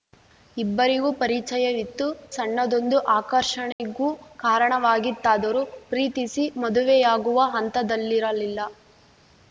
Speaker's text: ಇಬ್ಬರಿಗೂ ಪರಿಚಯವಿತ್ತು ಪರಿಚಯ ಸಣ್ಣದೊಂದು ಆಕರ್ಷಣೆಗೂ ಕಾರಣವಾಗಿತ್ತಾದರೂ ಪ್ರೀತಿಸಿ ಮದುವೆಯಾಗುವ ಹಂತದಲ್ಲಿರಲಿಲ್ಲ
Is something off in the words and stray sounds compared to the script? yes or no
yes